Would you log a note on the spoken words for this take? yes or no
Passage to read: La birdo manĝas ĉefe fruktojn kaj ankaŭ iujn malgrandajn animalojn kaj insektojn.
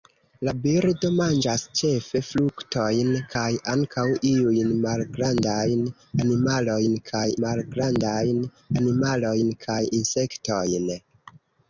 yes